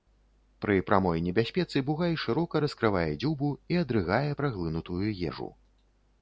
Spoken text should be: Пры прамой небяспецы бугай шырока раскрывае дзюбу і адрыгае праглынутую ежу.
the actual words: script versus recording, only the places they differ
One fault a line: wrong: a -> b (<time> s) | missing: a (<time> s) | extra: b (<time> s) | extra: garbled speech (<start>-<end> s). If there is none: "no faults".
no faults